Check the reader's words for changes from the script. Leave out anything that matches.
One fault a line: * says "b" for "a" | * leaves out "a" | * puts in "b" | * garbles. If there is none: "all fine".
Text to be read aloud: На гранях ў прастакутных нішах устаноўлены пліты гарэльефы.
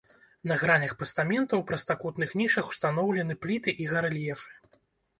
* puts in "пастамента"
* puts in "і"